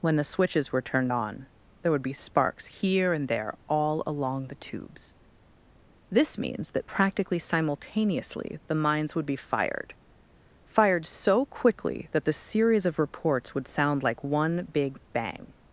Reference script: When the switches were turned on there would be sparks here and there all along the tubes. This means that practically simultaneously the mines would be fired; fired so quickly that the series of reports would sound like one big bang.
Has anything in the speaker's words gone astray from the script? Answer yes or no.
no